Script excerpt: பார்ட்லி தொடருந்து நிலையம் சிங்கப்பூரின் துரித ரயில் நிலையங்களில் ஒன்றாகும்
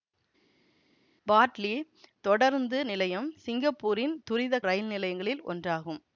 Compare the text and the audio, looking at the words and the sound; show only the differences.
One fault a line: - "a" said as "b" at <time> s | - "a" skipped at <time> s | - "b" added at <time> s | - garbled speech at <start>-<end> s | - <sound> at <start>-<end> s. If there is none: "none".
none